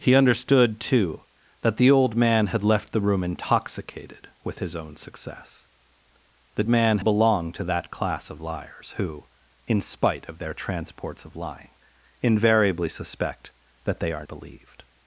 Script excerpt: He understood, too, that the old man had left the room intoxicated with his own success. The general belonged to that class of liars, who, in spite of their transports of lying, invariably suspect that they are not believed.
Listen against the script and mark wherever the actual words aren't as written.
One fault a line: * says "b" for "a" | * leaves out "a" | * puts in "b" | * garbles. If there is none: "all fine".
* says "man" for "general"
* leaves out "not"